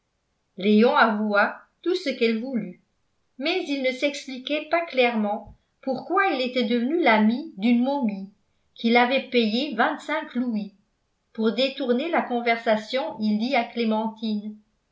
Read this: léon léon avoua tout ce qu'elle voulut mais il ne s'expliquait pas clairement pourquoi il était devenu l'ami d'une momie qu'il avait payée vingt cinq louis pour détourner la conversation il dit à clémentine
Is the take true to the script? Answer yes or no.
no